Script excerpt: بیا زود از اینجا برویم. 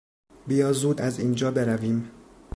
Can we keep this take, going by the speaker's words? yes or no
yes